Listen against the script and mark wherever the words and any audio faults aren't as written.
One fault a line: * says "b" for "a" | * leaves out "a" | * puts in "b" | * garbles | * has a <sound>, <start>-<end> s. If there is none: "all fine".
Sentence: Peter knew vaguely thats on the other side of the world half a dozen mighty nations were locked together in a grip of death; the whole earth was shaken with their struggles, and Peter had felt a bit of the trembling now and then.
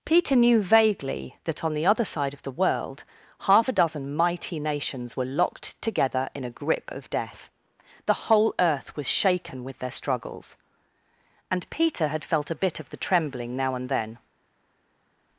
* says "that" for "thats"